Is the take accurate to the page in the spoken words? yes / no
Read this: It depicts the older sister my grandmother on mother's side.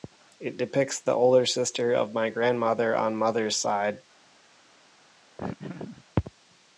no